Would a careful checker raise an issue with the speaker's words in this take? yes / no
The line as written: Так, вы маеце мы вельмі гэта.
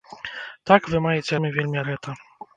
no